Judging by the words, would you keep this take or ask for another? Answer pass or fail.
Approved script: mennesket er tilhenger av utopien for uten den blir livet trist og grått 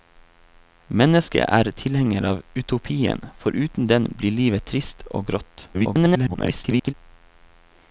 fail